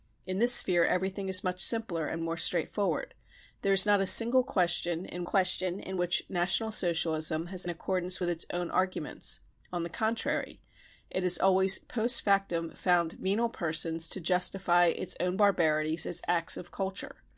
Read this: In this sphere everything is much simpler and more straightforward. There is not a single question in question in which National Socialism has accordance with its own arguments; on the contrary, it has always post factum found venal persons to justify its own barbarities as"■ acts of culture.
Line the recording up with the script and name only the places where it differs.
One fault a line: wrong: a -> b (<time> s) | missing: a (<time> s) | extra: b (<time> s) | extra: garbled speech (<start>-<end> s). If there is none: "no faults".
no faults